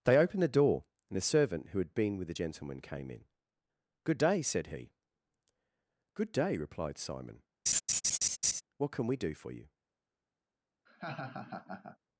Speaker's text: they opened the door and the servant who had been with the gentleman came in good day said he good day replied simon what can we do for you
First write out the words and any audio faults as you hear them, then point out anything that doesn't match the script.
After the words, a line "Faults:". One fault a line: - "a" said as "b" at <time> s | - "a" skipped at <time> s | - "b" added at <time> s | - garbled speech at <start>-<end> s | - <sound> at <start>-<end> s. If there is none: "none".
they opened the door and the servant who had been with the gentleman came in good day said he good day replied simon what can we do for you
Faults:
- laugh at 7.7-8.6 s
- laugh at 10.9-12.0 s